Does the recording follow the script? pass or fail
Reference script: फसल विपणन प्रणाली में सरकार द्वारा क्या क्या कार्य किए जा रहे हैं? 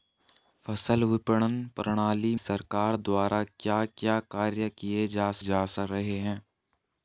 fail